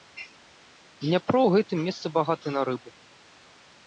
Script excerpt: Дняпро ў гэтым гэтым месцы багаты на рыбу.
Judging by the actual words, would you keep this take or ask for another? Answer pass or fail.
fail